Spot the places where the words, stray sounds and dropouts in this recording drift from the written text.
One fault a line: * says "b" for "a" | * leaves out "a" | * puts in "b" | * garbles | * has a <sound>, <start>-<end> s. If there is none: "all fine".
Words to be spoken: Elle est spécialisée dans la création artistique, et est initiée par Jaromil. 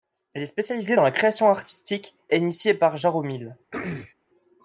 * leaves out "et"
* has a throat clearing, 3.7-4.1 s